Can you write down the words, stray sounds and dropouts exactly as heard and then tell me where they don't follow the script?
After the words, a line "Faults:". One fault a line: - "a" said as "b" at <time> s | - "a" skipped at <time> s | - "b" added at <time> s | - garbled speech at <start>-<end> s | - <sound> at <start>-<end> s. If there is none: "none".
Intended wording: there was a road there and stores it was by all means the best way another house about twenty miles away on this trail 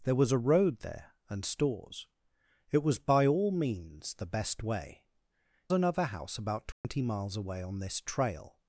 there was a road there and stores it was by all means the best way another house about twenty miles away on this trail
Faults:
- dropout at 6.7-6.8 s